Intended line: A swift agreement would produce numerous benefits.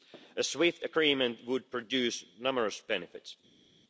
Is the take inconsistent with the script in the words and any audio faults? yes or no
no